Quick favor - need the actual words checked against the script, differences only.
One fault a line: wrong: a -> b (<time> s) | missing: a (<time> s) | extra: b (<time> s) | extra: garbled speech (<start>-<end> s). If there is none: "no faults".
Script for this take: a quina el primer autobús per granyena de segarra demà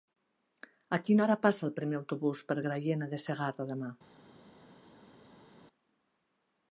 extra: hora passa (1.2 s)